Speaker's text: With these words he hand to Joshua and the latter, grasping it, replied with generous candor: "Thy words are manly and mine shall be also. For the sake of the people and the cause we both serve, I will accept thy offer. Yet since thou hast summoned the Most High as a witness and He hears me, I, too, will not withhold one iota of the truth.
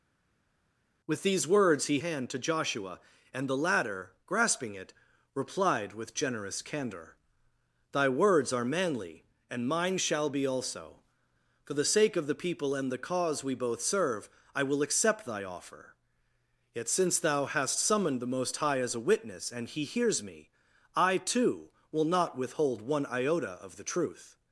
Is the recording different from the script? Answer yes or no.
no